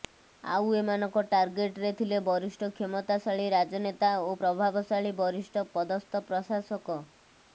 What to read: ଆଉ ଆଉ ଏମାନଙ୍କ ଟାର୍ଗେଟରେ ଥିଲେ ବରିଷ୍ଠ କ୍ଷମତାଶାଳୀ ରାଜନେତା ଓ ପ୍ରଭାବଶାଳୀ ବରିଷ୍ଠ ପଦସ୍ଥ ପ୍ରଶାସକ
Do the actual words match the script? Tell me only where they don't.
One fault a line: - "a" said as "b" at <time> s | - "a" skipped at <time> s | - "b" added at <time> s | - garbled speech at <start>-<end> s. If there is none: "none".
- "ଆଉ" skipped at 0.7 s